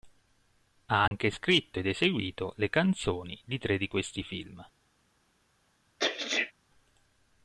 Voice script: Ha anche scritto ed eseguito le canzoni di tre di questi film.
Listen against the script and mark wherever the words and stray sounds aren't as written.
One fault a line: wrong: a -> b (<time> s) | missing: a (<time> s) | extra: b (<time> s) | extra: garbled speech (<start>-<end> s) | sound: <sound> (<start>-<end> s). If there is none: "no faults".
sound: dropout (1.1-1.1 s)
sound: sneeze (6.0-6.5 s)